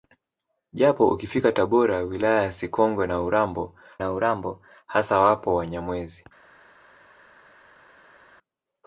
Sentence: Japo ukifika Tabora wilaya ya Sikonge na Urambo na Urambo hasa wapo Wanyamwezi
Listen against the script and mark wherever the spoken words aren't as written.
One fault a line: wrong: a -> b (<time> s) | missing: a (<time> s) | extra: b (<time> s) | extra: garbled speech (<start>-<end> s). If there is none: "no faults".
no faults